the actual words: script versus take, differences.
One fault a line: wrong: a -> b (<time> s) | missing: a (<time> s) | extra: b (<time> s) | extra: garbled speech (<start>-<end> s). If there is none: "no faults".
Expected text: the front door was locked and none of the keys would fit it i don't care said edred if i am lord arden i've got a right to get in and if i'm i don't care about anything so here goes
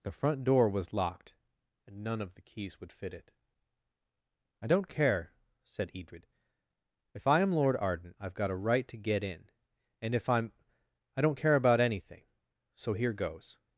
no faults